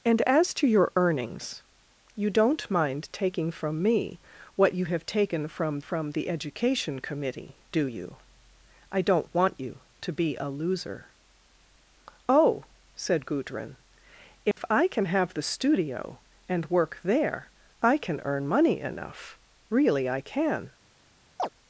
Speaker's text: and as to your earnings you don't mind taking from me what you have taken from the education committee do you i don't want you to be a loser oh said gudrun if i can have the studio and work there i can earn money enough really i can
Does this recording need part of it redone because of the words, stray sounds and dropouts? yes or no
yes